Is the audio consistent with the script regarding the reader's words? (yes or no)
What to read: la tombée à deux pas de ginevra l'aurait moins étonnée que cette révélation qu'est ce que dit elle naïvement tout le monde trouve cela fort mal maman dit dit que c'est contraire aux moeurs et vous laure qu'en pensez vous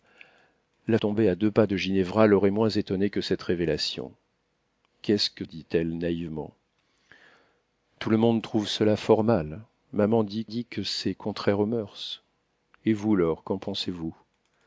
yes